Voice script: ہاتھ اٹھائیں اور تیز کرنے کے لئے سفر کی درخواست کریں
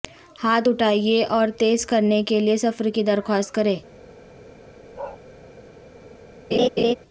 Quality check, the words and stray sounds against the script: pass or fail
fail